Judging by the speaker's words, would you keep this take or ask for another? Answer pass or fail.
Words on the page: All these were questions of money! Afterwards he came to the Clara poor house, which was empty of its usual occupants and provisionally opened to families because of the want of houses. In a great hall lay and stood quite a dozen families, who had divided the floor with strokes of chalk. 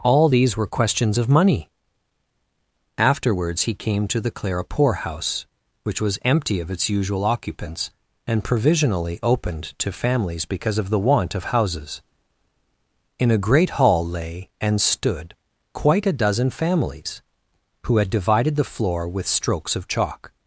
pass